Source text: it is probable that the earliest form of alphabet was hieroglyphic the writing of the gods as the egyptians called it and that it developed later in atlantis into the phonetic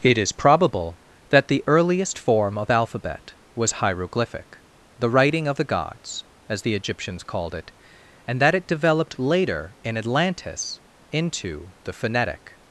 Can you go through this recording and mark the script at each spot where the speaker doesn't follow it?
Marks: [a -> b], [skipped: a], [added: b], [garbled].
it is probable that the earliest form of alphabet was hieroglyphic the writing of the gods as the egyptians called it and that it developed later in atlantis into the phonetic